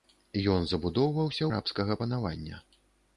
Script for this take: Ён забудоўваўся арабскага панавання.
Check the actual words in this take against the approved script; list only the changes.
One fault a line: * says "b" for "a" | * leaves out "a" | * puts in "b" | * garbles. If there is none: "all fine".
all fine